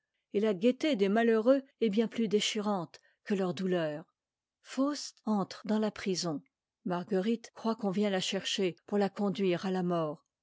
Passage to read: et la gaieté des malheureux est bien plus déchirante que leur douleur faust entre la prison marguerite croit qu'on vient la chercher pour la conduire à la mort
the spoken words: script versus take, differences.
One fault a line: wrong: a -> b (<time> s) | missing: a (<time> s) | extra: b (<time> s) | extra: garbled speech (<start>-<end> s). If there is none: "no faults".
extra: dans (5.7 s)